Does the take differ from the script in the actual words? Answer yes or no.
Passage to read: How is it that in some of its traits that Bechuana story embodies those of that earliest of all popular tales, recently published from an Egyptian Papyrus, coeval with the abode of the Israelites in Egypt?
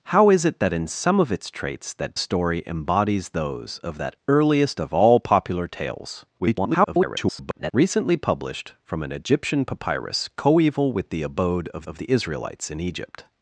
yes